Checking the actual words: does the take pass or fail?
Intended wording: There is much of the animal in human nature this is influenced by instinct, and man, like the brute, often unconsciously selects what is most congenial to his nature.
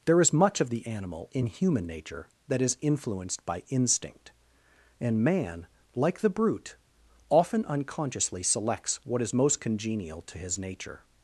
fail